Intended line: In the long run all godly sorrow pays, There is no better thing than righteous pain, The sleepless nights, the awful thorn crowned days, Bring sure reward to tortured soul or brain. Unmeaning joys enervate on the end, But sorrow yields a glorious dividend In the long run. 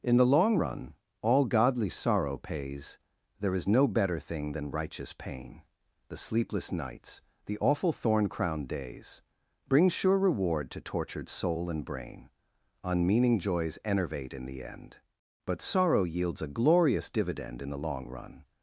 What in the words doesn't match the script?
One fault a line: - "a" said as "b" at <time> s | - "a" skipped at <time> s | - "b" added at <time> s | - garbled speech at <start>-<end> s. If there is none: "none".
- "or" said as "and" at 11.7 s
- "on" said as "in" at 14.3 s